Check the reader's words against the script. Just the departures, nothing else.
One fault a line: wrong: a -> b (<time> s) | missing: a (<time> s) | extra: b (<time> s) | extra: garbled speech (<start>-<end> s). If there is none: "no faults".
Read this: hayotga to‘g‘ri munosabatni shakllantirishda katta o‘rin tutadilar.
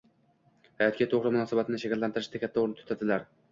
no faults